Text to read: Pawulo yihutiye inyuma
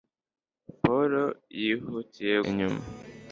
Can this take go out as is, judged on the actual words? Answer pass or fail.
pass